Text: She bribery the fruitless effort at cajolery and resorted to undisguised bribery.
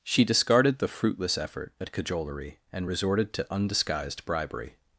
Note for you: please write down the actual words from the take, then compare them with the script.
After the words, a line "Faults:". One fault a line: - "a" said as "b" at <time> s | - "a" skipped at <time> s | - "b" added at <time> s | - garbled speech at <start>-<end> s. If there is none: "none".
She discarded the fruitless effort at cajolery and resorted to undisguised bribery.
Faults:
- "bribery" said as "discarded" at 0.2 s